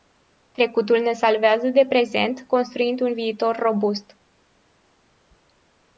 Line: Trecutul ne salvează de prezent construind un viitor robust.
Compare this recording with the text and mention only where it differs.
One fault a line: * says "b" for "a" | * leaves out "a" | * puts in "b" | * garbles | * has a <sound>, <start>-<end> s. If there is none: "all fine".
all fine